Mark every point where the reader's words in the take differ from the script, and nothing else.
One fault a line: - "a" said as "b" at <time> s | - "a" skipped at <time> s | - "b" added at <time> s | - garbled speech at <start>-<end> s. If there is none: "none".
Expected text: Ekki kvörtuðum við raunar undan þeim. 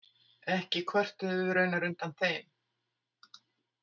none